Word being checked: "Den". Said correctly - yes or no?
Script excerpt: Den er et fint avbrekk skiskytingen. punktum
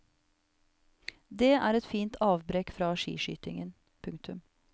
no